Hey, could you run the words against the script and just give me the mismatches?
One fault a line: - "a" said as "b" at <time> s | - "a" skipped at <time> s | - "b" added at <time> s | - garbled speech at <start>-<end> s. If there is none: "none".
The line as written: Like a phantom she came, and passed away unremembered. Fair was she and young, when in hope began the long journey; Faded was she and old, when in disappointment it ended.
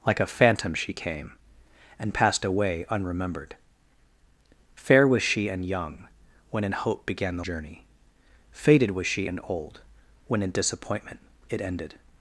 - "long" skipped at 7.5 s